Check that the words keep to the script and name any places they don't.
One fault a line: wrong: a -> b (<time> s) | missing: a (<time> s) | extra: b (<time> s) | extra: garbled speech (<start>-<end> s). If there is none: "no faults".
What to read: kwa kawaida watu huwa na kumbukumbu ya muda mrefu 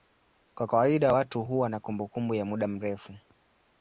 no faults